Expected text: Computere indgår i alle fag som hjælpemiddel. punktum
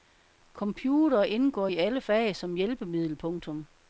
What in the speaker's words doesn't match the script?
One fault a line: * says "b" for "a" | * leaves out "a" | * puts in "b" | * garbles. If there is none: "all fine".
all fine